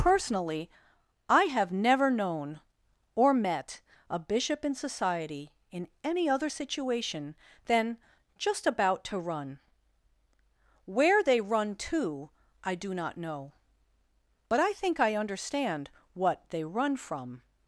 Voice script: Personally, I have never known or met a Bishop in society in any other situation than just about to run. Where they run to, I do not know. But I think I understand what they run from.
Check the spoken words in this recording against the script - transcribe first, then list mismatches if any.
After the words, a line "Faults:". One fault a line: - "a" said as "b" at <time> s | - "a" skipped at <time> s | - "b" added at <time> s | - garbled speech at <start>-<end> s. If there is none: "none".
Personally, I have never known or met a Bishop in society in any other situation than just about to run. Where they run to, I do not know. But I think I understand what they run from.
Faults:
none